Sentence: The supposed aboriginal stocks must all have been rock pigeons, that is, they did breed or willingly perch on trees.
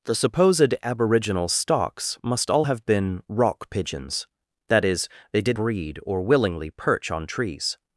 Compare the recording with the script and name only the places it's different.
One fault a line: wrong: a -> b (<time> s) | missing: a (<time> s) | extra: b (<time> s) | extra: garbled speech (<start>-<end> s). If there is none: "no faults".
no faults